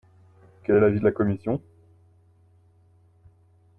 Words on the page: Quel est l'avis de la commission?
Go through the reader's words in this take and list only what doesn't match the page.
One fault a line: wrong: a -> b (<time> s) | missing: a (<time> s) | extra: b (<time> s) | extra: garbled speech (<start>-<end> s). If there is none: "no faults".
no faults